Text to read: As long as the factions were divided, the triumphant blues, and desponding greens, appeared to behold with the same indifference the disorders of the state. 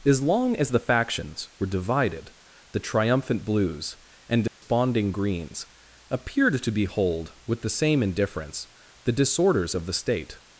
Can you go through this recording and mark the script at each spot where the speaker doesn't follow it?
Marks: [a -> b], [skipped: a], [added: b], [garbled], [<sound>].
As long as the factions were divided, the triumphant blues, and desponding [dropout] greens, appeared to behold with the same indifference the disorders of the state.